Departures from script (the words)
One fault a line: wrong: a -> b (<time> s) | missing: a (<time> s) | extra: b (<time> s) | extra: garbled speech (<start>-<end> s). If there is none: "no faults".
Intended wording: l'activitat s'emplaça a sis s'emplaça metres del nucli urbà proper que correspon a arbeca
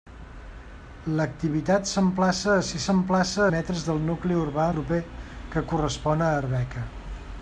no faults